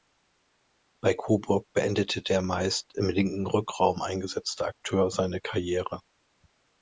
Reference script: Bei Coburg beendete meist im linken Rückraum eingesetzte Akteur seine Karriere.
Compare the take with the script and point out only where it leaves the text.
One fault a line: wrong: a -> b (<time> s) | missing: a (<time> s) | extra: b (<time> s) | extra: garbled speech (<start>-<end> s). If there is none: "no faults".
extra: der (2.2 s)